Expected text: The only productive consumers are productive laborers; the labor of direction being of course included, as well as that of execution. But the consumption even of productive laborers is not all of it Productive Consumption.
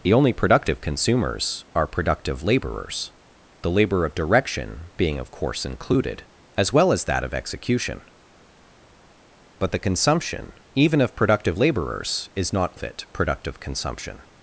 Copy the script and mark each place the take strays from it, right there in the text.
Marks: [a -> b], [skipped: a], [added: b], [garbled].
The only productive consumers are productive laborers; the labor of direction being of course included, as well as that of execution. But the consumption even of productive laborers is not [skipped: all] of it Productive Consumption.